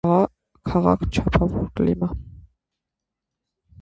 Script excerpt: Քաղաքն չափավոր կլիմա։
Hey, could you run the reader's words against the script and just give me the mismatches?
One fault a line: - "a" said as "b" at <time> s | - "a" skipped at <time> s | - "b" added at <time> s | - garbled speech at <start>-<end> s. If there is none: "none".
none